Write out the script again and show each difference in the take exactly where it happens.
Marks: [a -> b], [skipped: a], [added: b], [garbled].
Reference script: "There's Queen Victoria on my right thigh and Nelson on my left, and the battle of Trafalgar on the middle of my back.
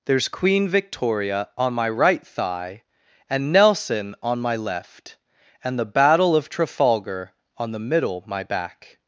"There's Queen Victoria on my right thigh and Nelson on my left, and the battle of Trafalgar on the middle [skipped: of] my back.